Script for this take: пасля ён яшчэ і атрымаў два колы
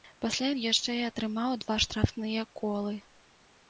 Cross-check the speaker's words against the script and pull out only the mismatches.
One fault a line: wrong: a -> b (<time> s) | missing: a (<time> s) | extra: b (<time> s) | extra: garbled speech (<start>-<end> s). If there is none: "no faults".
extra: штрафныя (1.9 s)